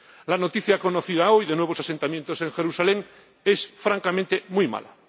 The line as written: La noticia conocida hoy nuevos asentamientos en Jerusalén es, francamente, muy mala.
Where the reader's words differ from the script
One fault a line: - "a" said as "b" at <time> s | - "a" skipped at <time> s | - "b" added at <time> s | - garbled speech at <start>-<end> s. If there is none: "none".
- "de" added at 1.4 s